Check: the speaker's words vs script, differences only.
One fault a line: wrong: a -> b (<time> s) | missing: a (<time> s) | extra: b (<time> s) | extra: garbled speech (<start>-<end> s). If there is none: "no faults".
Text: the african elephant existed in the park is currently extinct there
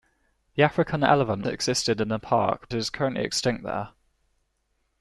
no faults